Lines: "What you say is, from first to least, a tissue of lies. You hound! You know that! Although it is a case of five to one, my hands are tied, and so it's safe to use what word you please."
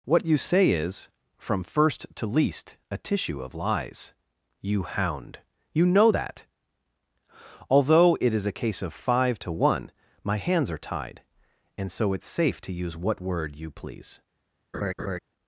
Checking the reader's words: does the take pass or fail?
pass